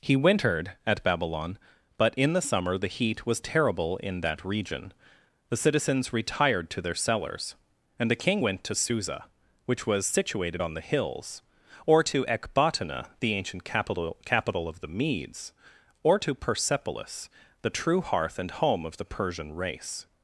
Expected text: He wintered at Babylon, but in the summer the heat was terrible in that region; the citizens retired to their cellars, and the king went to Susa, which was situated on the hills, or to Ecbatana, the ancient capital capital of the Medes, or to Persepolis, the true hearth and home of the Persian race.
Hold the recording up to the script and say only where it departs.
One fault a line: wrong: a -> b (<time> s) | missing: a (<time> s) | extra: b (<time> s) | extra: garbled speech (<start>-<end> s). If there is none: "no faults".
no faults